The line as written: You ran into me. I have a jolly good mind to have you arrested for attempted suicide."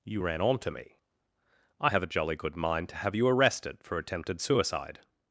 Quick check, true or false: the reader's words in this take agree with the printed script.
false